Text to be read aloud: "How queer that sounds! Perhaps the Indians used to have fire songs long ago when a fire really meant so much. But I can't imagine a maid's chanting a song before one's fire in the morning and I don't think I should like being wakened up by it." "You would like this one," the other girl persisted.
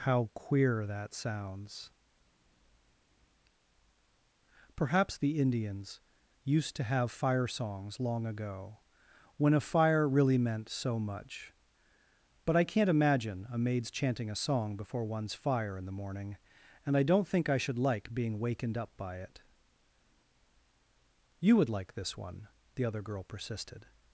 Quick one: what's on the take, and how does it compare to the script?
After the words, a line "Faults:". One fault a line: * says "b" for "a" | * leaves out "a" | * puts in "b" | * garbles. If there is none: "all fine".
"How queer that sounds! Perhaps the Indians used to have fire songs long ago when a fire really meant so much. But I can't imagine a maid's chanting a song before one's fire in the morning and I don't think I should like being wakened up by it." "You would like this one," the other girl persisted.
Faults:
all fine